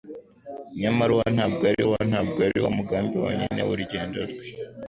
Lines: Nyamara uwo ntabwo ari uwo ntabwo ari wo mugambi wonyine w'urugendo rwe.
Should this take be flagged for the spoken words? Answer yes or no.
no